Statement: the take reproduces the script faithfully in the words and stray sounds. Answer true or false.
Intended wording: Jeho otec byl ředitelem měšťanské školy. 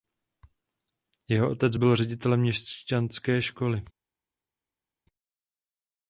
true